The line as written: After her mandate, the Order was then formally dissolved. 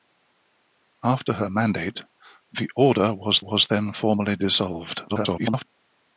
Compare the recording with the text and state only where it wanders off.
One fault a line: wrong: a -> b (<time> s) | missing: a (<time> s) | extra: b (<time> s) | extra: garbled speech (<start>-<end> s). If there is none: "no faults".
extra: was (3.4 s)
extra: garbled speech (5.1-5.6 s)